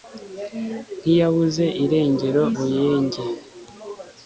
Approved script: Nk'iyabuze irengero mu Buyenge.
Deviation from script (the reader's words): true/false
true